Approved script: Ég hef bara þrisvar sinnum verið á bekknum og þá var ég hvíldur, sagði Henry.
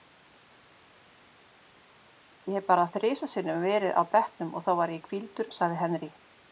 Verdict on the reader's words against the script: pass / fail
pass